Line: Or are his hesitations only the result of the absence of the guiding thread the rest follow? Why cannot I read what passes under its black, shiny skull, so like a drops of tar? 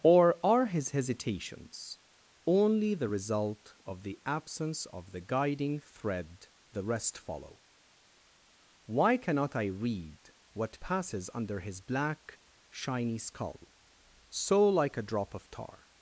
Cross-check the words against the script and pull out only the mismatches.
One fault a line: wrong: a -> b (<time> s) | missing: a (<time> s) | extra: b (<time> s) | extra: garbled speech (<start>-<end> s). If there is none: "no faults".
wrong: its -> his (11.6 s)
wrong: drops -> drop (15.0 s)